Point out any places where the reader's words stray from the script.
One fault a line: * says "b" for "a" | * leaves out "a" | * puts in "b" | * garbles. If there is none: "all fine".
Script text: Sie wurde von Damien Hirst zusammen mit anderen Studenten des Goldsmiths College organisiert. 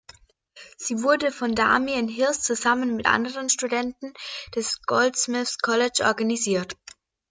all fine